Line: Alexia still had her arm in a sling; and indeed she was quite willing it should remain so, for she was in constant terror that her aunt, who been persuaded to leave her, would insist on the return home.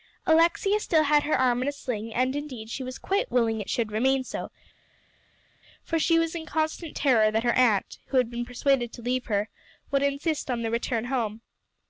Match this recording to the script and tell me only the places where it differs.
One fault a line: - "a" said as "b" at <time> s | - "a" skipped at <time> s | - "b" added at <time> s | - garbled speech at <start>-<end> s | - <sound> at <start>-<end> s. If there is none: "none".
- "had" added at 8.2 s